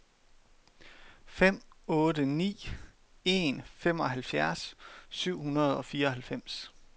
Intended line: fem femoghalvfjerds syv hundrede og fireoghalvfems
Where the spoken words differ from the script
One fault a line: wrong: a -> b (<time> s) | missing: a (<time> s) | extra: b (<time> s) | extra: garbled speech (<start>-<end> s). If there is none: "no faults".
extra: otte ni en (1.9 s)